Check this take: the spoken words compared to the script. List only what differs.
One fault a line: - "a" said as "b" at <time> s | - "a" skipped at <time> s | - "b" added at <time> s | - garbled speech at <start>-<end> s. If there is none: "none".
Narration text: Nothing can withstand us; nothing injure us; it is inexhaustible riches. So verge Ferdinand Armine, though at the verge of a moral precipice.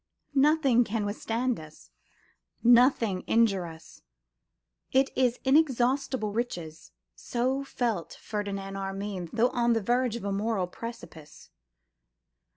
- "verge" said as "felt" at 7.6 s
- "at" said as "on" at 9.5 s